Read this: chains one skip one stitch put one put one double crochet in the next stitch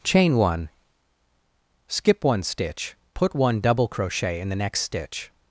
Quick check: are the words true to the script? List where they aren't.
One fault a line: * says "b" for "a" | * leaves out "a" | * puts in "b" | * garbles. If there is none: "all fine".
* says "chain" for "chains"
* leaves out "put one"